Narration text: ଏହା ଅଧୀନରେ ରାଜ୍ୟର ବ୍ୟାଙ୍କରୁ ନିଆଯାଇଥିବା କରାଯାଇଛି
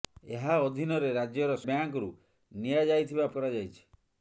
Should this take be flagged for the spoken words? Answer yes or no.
no